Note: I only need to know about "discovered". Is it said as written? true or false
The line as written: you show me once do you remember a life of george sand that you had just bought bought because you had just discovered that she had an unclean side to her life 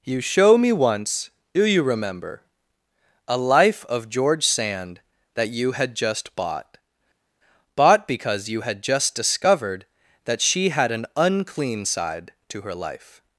true